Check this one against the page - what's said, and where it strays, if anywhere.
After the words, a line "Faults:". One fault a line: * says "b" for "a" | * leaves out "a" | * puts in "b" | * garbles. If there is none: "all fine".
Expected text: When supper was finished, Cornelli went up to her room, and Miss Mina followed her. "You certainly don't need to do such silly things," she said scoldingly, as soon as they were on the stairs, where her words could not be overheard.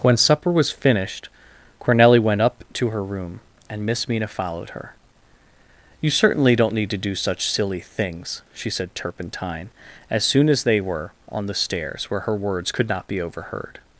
When supper was finished, Cornelli went up to her room, and Miss Mina followed her. "You certainly don't need to do such silly things," she said turpentine, as soon as they were on the stairs, where her words could not be overheard.
Faults:
* says "turpentine" for "scoldingly"